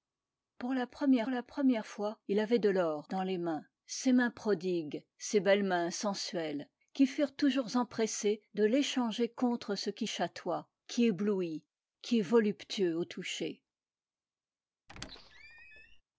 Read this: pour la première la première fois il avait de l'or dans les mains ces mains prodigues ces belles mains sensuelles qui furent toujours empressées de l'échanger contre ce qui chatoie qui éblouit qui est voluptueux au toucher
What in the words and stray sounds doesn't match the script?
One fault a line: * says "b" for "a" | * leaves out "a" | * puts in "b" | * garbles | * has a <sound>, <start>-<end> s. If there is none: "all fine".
* has a squeak, 14.9-16.0 s